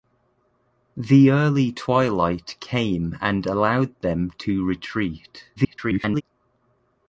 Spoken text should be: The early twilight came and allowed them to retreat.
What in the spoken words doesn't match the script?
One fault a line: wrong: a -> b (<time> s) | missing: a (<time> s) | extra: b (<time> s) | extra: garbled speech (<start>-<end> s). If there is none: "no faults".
extra: garbled speech (5.6-6.2 s)